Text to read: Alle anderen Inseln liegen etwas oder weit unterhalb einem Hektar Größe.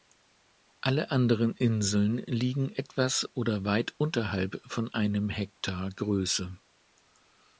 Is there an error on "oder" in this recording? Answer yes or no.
no